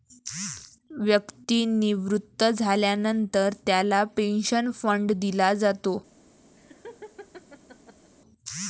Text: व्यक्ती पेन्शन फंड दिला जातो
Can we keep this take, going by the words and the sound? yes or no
no